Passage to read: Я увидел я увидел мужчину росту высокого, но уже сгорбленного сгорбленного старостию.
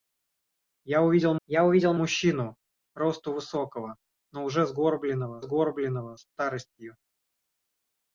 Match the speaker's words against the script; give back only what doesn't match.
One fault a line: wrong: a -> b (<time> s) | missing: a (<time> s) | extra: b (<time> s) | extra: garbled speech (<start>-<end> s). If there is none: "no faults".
no faults